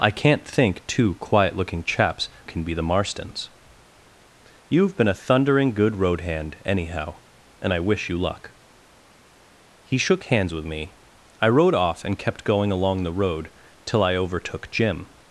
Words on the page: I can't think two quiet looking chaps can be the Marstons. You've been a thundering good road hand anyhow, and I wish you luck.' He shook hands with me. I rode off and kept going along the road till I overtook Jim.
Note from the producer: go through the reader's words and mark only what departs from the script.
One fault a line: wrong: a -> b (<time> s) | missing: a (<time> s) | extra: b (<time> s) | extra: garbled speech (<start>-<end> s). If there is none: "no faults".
no faults